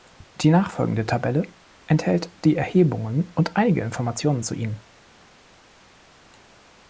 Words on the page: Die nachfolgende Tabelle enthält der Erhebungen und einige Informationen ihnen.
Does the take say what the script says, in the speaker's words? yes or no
no